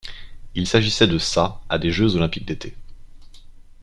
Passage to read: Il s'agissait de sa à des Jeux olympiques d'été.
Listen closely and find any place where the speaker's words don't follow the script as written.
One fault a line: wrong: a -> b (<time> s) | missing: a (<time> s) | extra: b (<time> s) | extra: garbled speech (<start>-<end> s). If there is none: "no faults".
no faults